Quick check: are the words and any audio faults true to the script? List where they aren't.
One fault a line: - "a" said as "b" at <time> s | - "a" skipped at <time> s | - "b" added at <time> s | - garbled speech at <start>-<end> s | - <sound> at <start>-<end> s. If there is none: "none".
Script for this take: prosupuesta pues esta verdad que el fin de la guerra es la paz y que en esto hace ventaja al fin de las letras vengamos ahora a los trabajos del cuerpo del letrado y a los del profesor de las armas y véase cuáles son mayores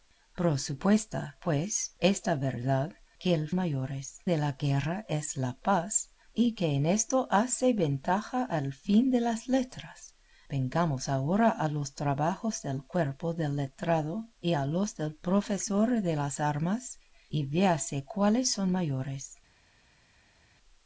- "fin" said as "mayores" at 3.5 s